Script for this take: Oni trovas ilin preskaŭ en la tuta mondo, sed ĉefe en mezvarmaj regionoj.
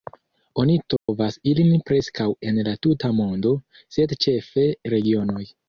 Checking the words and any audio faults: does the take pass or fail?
fail